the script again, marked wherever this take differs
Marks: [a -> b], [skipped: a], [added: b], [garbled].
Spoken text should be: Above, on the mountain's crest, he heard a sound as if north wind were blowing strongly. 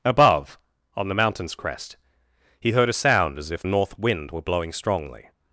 Above, on the mountain's crest, he heard a sound as if north wind were blowing strongly.